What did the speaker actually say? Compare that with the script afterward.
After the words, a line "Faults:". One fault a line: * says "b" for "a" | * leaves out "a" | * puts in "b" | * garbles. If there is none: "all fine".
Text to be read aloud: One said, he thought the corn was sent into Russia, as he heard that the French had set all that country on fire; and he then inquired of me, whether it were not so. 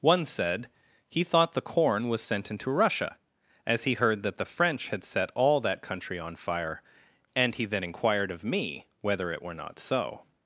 One said, he thought the corn was sent into Russia, as he heard that the French had set all that country on fire; and he then inquired of me, whether it were not so.
Faults:
all fine